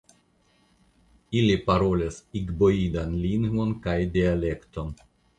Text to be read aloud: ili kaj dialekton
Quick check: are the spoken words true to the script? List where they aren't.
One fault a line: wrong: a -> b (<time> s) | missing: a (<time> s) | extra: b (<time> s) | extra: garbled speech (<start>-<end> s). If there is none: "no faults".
extra: parolas igboidan lingvon (1.7 s)